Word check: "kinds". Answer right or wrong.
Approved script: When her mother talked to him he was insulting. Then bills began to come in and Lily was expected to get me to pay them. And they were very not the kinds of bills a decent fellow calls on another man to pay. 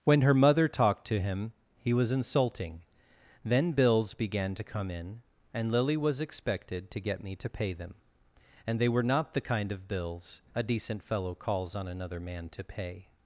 wrong